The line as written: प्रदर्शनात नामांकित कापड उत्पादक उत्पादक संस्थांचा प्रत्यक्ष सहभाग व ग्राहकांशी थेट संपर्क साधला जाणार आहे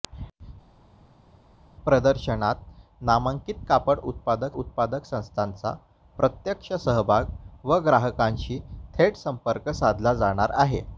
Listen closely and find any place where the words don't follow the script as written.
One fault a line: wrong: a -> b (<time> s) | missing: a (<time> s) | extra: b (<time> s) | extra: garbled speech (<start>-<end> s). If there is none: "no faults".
no faults